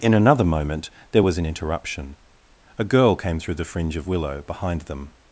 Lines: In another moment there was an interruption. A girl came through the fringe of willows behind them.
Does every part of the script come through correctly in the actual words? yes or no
no